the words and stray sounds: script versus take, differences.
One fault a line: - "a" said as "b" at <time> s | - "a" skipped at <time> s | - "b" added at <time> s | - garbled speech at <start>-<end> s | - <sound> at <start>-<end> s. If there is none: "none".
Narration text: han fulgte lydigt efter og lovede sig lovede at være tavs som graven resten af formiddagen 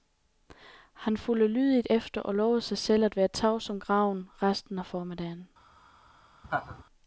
- "lovede" said as "selv" at 2.8 s
- laugh at 6.4-6.8 s